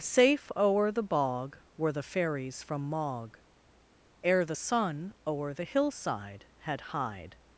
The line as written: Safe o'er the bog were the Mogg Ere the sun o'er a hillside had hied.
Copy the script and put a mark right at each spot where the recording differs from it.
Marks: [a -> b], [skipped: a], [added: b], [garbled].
Safe o'er the bog were the [added: fairies from] Mogg Ere the sun o'er [a -> the] hillside had hied.